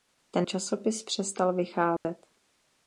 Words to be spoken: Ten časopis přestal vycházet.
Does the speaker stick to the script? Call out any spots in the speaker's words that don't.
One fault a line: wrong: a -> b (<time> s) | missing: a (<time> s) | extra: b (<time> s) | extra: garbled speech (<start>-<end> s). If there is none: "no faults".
no faults